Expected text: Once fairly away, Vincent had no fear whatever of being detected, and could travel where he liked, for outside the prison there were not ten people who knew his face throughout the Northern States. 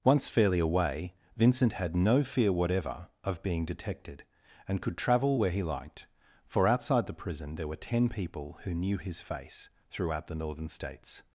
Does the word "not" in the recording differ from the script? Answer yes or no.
yes